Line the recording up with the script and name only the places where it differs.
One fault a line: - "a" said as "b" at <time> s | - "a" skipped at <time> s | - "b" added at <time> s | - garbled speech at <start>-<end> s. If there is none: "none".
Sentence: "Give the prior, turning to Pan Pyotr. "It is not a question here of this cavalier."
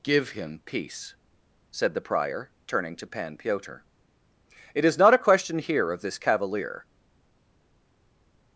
- "him peace said" added at 0.3 s